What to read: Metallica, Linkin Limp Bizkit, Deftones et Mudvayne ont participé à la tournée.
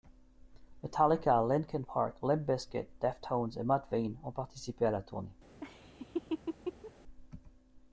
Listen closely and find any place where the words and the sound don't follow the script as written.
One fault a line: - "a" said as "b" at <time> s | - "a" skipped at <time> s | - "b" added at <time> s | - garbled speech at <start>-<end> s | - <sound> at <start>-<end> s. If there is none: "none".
- "Park" added at 1.8 s
- laugh at 5.6-6.9 s